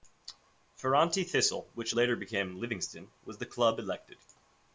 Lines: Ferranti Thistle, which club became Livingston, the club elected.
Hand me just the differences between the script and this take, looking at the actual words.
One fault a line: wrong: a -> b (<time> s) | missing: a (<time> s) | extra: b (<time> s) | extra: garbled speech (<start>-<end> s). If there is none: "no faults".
wrong: club -> later (1.9 s)
extra: was (3.2 s)